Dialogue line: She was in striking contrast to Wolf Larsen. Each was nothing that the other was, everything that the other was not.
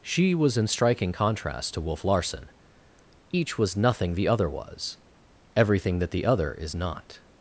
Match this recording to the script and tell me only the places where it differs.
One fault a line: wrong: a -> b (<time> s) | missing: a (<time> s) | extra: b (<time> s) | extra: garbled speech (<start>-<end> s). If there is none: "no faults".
missing: that (4.1 s)
wrong: was -> is (6.5 s)